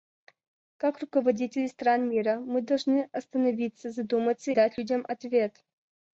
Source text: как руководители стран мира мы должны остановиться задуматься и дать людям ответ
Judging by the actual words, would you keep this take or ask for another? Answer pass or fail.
fail